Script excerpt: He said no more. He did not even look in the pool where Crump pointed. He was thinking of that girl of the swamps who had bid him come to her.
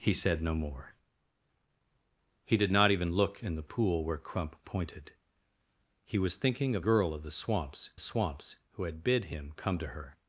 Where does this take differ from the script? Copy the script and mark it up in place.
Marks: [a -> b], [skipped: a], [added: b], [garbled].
He said no more. He did not even look in the pool where Crump pointed. He was thinking of [skipped: that] girl of the swamps [added: swamps] who had bid him come to her.